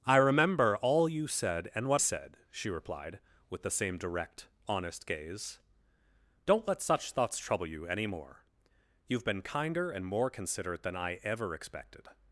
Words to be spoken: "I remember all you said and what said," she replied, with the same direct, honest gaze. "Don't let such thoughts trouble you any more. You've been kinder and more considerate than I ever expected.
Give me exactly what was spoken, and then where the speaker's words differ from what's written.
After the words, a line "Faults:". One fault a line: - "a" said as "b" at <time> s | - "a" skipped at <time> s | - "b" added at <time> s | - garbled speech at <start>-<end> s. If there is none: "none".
"I remember all you said and what said," she replied, with the same direct, honest gaze. "Don't let such thoughts trouble you any more. You've been kinder and more considerate than I ever expected.
Faults:
none